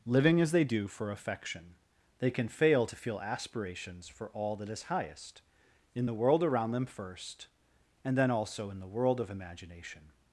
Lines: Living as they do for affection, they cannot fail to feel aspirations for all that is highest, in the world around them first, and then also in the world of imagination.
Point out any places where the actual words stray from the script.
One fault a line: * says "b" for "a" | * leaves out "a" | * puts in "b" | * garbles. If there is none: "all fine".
* says "can" for "cannot"